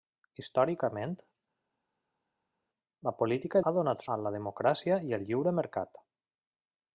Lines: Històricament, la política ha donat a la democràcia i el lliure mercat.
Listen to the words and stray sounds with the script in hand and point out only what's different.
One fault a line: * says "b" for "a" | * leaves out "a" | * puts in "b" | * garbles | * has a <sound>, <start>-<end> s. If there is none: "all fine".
all fine